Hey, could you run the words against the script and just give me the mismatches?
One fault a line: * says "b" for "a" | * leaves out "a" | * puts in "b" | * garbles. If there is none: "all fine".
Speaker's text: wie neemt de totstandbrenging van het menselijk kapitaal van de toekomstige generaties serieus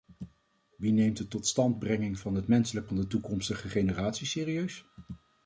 * leaves out "kapitaal"